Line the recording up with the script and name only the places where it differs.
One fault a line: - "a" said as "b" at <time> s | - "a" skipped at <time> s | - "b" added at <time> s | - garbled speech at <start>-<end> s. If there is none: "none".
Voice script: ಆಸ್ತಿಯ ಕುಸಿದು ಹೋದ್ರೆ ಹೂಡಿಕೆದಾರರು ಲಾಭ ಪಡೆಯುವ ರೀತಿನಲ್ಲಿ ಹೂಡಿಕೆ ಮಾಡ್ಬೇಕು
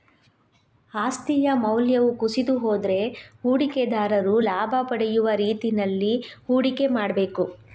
- "ಮೌಲ್ಯವು" added at 1.6 s